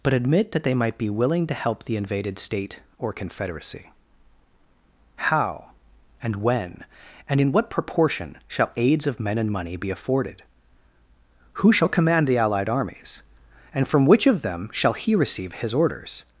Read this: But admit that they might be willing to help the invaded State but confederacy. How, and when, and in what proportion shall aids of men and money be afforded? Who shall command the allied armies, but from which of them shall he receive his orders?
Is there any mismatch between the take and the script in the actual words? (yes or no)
yes